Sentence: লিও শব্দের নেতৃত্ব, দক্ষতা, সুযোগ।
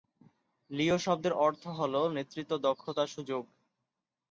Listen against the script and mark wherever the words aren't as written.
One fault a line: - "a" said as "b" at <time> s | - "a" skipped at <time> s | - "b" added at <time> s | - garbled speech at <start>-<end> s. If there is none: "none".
- "অর্থ হল" added at 1.4 s